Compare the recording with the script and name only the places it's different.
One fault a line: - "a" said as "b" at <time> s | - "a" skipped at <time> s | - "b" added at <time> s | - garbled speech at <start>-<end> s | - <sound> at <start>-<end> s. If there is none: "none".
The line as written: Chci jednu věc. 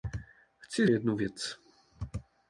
none